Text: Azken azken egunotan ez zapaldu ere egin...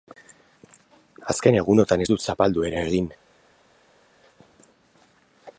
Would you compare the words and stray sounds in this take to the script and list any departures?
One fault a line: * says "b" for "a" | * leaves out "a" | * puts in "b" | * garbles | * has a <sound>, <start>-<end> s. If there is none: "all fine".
* leaves out "azken"
* puts in "dut"